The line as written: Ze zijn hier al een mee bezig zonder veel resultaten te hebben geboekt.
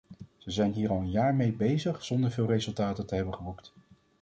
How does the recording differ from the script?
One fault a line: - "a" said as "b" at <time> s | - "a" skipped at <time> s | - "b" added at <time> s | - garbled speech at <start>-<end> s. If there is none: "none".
- "jaar" added at 1.1 s